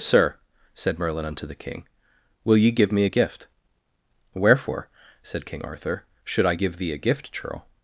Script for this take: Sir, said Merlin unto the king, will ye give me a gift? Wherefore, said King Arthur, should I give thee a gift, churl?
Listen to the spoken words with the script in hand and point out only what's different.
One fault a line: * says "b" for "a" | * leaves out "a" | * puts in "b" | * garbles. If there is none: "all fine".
all fine